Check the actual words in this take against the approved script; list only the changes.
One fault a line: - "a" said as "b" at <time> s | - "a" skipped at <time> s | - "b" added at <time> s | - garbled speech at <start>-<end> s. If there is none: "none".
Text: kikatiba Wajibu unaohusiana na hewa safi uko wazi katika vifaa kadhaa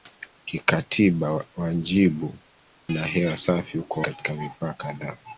- "unaohusiana" skipped at 2.4 s
- "wazi" skipped at 4.0 s